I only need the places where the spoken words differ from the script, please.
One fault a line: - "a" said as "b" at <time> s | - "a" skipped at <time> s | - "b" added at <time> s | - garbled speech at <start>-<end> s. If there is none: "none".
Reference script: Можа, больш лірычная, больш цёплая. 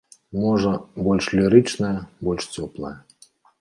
none